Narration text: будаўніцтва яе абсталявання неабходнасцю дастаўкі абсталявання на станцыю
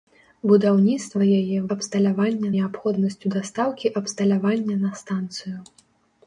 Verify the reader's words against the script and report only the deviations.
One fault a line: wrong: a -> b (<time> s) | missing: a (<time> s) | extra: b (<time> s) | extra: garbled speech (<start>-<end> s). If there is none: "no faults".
no faults